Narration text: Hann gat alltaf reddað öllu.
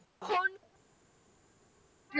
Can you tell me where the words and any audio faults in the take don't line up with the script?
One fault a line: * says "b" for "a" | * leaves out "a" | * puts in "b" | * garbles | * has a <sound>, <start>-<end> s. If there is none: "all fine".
* leaves out "gat alltaf reddað"